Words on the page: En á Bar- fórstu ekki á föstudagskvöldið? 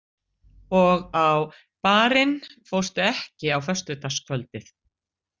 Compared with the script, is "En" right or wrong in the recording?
wrong